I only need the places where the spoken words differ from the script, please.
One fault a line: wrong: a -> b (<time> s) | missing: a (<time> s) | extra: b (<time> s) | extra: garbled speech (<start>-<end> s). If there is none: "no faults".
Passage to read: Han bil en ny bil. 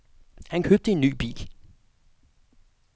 wrong: bil -> købte (0.6 s)